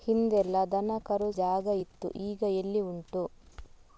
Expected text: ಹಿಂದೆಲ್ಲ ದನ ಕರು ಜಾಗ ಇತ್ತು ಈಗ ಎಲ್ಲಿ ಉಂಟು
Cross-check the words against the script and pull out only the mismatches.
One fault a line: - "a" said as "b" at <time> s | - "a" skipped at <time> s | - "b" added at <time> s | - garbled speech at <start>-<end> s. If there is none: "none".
none